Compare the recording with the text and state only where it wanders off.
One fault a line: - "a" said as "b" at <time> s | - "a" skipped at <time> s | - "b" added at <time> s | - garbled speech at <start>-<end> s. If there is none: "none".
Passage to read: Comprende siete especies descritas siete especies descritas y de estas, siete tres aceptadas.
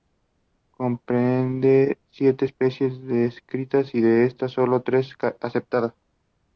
- "siete especies descritas" skipped at 3.9 s
- "siete" said as "solo" at 4.5 s